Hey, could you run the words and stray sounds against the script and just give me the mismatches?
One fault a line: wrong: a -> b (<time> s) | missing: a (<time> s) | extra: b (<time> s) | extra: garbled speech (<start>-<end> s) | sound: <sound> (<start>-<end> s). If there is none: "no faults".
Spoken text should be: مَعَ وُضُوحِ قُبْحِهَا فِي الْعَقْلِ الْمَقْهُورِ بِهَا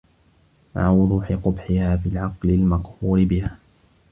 no faults